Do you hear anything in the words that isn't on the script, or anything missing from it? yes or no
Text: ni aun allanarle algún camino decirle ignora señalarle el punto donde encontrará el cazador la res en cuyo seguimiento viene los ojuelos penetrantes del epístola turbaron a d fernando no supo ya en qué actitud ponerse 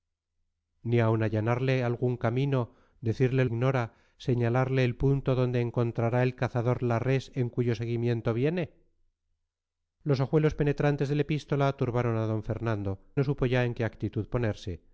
no